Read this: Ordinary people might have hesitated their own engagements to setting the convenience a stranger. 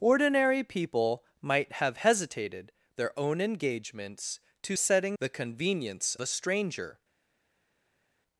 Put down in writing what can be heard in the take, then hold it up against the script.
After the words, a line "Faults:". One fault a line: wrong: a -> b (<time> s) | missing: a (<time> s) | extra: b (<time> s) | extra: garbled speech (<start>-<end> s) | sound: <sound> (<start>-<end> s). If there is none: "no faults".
Ordinary people might have hesitated their own engagements to setting the convenience a stranger.
Faults:
no faults